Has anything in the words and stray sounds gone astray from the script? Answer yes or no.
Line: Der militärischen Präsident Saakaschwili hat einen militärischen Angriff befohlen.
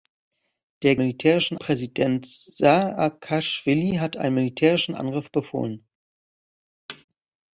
yes